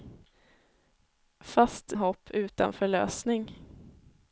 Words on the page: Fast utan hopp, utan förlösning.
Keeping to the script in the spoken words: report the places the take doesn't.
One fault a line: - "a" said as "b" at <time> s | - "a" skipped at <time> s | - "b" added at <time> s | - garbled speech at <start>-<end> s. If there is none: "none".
- "utan" skipped at 1.9 s